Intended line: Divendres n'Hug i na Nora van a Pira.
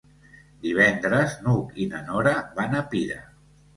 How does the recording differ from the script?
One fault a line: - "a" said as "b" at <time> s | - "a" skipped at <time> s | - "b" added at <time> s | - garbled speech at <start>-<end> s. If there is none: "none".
none